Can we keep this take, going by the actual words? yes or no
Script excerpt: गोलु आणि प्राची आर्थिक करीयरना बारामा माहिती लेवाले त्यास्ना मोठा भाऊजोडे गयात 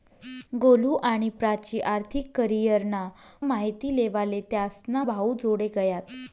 no